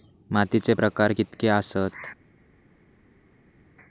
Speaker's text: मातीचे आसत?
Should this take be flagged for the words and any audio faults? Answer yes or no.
yes